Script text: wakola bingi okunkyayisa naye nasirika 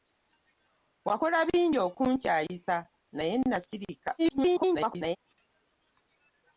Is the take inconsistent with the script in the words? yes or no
yes